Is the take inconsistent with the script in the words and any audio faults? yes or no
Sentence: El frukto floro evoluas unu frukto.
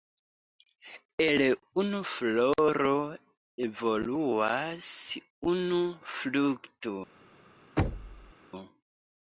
yes